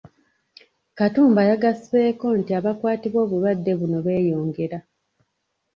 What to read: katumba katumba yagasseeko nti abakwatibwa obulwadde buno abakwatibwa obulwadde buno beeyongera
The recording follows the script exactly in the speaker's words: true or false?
false